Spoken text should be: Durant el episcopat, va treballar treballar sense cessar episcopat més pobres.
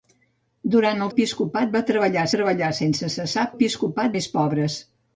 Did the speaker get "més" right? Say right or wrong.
right